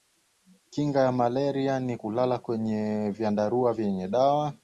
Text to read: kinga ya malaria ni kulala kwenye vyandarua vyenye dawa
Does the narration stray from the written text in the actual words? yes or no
no